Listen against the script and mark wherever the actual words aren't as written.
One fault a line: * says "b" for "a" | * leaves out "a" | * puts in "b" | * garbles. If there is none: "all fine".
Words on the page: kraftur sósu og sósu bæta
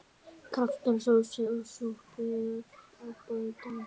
* says "súpur" for "sósu"